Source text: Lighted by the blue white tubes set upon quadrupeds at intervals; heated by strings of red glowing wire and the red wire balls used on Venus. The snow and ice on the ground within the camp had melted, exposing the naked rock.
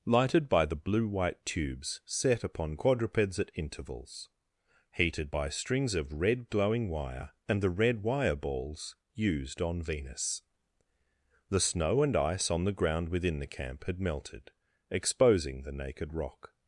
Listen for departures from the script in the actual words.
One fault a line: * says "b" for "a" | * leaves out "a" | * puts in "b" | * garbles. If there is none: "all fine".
all fine